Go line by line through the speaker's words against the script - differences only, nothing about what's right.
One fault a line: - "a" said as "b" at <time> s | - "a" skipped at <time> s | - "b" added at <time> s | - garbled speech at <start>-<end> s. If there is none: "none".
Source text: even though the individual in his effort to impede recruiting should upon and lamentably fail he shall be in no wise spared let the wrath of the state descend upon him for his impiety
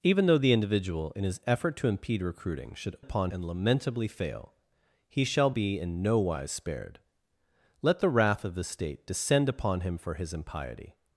none